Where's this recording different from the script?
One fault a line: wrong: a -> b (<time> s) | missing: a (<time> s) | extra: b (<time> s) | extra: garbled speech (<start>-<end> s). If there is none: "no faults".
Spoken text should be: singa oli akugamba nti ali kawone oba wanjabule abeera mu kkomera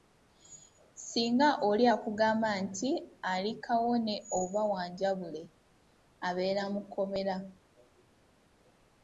no faults